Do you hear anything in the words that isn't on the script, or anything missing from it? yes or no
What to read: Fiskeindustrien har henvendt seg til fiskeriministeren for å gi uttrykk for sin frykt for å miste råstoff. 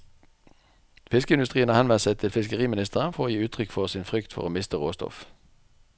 no